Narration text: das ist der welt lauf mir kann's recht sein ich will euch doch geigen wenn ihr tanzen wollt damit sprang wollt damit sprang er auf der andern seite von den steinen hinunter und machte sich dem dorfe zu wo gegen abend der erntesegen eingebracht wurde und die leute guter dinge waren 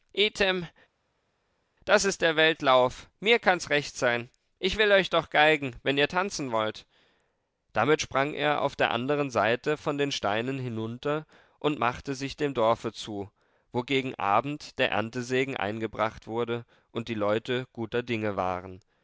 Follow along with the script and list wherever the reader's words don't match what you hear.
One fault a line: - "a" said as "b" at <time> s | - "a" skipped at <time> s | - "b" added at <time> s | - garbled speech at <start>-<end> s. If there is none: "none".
- "wollt damit sprang" skipped at 8.3 s